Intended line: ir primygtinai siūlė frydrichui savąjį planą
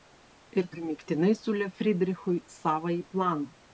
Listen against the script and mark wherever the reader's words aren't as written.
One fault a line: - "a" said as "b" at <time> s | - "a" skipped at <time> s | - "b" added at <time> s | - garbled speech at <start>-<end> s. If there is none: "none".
none